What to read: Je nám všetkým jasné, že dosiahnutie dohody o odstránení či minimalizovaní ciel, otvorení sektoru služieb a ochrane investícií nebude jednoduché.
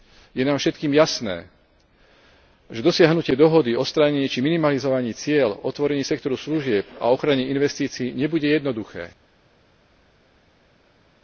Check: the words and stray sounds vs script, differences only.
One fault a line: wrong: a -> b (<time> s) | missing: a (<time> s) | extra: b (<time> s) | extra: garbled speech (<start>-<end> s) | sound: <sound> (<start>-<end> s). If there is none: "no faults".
no faults